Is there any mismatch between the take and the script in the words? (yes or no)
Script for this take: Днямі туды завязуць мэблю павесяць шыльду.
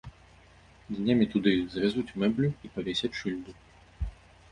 yes